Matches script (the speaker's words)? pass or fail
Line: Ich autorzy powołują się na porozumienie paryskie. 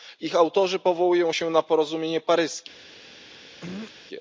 pass